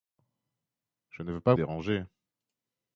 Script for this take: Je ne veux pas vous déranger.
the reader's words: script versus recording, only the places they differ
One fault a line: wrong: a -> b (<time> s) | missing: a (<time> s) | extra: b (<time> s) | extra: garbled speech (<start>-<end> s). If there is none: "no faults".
missing: vous (1.5 s)